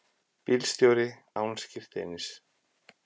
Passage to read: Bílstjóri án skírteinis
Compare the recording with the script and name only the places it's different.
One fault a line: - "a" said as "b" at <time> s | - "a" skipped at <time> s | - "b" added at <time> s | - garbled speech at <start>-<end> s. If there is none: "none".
none